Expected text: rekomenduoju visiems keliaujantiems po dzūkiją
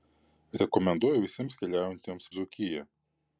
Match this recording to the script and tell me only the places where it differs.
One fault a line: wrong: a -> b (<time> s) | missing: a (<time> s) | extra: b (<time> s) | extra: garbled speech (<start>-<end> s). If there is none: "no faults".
missing: po (2.3 s)